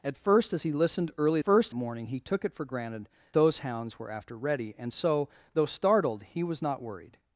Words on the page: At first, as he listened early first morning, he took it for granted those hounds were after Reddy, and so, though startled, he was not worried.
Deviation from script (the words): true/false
false